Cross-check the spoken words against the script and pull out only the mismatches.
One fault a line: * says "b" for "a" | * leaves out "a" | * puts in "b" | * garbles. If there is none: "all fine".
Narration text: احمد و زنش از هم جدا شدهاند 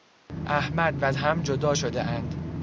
* leaves out "زنش از"